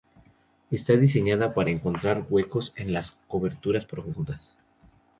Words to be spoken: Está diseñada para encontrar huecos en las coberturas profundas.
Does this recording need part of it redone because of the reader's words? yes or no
no